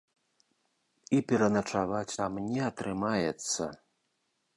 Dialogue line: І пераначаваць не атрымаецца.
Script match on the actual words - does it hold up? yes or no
no